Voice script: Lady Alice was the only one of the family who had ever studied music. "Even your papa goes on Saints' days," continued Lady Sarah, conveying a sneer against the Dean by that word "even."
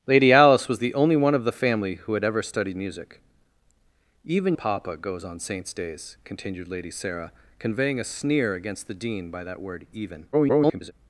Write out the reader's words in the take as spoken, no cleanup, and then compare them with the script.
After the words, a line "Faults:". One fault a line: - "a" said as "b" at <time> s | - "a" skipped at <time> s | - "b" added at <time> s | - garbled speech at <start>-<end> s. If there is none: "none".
Lady Alice was the only one of the family who had ever studied music. "Even papa goes on Saints' days," continued Lady Sarah, conveying a sneer against the Dean by that word "even." [garbled]
Faults:
- "your" skipped at 4.5 s
- garbled speech at 10.3-10.9 s